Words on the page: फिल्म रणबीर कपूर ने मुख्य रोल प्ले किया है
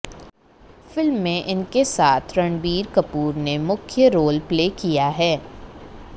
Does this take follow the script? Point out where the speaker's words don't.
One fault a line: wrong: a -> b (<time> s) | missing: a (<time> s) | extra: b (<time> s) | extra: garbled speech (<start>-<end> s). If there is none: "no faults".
extra: में इनके साथ (1.2 s)